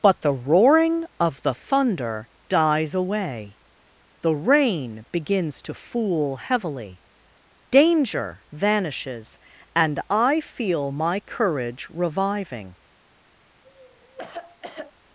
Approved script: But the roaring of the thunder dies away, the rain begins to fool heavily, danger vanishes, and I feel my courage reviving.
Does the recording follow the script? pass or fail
pass